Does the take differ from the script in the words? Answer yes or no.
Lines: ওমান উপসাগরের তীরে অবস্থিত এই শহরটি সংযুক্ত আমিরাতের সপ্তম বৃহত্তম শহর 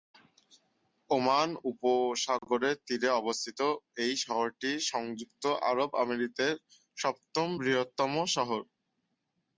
yes